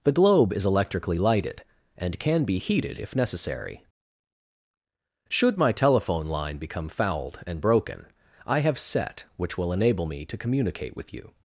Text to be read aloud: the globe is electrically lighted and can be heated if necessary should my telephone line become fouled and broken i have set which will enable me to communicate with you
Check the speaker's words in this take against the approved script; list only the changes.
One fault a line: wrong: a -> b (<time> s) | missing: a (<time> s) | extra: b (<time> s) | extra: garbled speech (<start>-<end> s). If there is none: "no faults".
no faults